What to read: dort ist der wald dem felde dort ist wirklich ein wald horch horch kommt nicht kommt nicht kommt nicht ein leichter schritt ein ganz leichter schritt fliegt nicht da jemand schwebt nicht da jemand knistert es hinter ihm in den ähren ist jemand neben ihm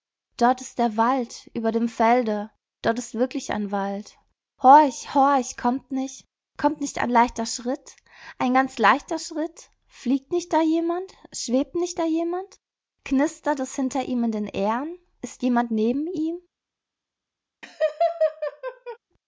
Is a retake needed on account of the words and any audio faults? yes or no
yes